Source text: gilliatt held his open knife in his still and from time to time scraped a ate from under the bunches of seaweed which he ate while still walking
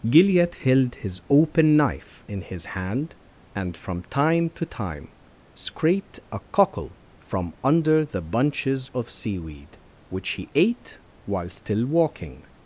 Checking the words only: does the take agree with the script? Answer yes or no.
no